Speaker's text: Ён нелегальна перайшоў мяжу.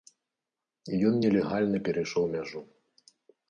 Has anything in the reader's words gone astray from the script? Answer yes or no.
no